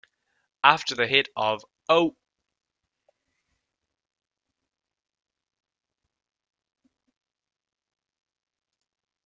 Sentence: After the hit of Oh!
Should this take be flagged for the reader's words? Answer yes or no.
no